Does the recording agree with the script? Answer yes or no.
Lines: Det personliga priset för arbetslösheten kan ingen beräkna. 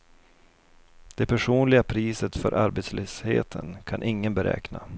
yes